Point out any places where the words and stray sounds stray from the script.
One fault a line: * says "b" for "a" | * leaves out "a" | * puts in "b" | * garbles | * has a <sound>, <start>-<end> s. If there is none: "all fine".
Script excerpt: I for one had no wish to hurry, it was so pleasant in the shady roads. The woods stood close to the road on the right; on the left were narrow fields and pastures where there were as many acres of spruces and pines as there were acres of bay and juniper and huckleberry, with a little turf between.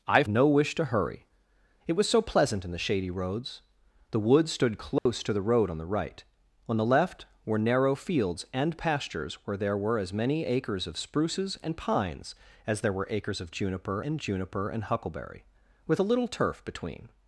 * leaves out "for one had"
* has a dropout, 5.0-5.1 s
* says "juniper" for "bay"